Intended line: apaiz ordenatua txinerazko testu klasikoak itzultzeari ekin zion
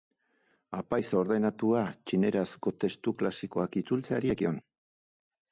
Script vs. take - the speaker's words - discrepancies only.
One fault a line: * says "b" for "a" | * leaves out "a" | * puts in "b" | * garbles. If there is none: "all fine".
* leaves out "ekin"